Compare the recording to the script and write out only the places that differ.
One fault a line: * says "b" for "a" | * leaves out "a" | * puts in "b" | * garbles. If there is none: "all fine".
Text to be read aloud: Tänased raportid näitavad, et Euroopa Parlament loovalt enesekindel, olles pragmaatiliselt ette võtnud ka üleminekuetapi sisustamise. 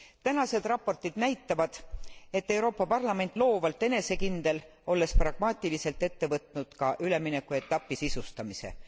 all fine